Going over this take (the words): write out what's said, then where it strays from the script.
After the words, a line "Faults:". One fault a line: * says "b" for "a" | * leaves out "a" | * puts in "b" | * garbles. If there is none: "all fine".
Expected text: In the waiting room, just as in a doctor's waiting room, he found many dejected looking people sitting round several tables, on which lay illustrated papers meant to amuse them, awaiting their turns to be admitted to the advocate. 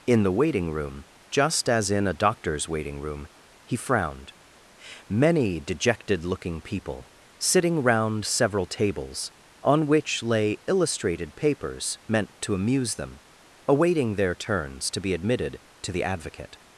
In the waiting room, just as in a doctor's waiting room, he frowned many dejected looking people sitting round several tables, on which lay illustrated papers meant to amuse them, awaiting their turns to be admitted to the advocate.
Faults:
* says "frowned" for "found"